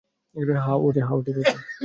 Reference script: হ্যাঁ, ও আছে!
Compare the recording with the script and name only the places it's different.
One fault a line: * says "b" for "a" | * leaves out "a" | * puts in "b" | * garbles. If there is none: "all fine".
all fine